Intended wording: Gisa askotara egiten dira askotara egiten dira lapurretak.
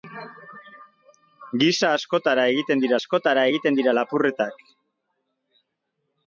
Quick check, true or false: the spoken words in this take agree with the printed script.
true